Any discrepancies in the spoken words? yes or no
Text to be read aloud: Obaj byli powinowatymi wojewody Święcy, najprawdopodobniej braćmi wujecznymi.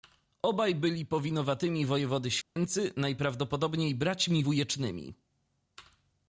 no